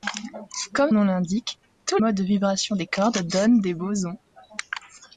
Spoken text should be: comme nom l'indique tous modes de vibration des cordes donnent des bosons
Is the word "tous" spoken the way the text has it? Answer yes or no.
yes